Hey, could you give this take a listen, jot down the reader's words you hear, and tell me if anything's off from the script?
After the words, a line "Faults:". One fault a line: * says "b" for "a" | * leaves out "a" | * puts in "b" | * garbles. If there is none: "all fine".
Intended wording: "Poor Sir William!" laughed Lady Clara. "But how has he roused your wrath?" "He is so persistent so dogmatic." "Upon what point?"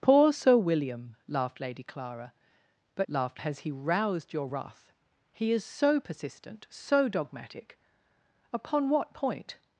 "Poor Sir William!" laughed Lady Clara. "But laughed has he roused your wrath?" "He is so persistent so dogmatic." "Upon what point?"
Faults:
* says "laughed" for "how"